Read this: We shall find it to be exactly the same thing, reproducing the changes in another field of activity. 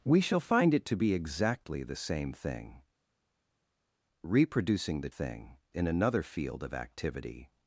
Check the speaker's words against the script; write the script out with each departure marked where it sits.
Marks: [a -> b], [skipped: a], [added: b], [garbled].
We shall find it to be exactly the same thing, reproducing the [changes -> thing] in another field of activity.